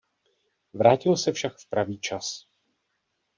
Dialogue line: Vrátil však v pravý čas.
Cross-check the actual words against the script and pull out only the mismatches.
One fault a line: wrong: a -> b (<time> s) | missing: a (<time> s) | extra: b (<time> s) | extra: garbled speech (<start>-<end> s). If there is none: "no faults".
extra: se (1.2 s)